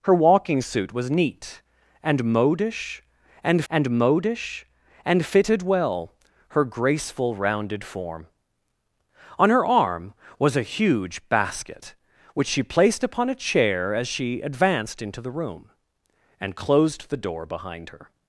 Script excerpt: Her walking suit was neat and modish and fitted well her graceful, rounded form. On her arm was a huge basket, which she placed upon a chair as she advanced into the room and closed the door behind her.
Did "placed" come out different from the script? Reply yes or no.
no